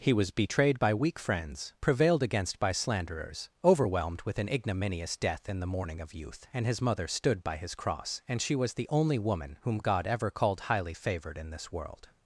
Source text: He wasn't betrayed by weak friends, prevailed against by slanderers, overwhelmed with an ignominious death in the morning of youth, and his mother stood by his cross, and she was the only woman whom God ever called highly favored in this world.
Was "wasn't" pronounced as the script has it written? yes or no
no